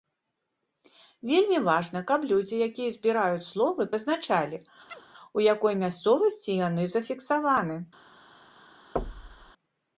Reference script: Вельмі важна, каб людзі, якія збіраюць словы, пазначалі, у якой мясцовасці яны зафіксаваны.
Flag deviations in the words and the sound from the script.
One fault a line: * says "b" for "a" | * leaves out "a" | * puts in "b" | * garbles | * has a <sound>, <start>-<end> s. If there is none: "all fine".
* has a chirp, 4.9-5.1 s
* has a thud, 9.0-9.5 s